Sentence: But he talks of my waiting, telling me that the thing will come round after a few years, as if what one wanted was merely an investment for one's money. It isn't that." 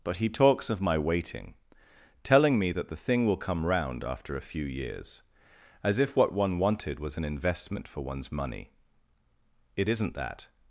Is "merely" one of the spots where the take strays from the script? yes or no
yes